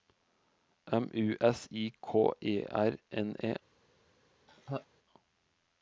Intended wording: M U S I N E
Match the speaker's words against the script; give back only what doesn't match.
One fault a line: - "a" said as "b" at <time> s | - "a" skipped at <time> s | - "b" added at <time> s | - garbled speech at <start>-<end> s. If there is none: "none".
- "K E R" added at 2.0 s